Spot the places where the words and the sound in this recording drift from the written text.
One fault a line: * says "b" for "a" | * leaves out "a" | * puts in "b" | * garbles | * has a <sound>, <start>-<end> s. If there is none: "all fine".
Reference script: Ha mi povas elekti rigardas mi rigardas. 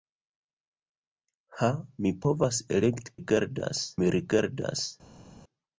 all fine